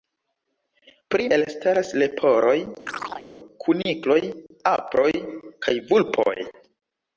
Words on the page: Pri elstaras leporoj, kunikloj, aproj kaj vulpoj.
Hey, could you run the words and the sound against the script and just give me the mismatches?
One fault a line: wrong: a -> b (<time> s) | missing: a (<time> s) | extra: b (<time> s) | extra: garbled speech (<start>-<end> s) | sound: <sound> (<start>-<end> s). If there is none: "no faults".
sound: chirp (2.9-3.3 s)